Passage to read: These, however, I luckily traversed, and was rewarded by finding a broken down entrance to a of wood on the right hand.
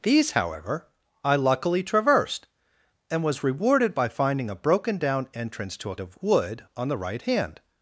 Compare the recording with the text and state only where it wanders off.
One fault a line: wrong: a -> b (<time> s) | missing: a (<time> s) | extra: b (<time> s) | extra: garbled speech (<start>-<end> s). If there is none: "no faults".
no faults